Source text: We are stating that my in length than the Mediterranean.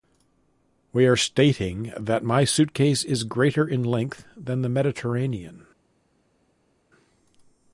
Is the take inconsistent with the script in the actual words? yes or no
yes